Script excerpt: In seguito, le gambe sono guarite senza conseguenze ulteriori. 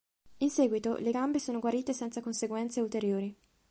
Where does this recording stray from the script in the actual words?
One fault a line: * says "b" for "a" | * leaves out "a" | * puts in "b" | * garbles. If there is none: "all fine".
all fine